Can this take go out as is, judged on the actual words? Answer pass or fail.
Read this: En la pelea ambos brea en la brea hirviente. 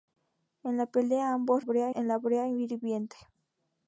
pass